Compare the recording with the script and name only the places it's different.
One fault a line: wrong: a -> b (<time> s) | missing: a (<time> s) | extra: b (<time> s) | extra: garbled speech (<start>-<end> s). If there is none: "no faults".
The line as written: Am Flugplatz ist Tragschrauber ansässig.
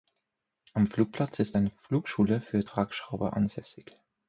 extra: eine Flugschule für (1.5 s)